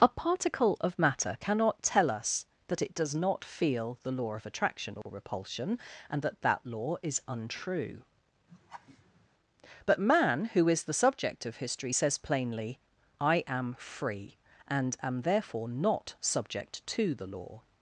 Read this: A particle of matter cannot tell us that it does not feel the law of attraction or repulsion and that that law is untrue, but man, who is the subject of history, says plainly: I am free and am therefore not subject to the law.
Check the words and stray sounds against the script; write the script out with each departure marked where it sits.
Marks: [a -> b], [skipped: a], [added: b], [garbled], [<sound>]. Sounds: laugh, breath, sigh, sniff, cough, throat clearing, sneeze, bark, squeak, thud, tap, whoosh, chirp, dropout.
A particle of matter cannot tell us that it does not feel the law of attraction or [dropout] repulsion and that that law is untrue, [laugh] but man, who is the subject of history, says plainly: I am free and am therefore not subject to the law.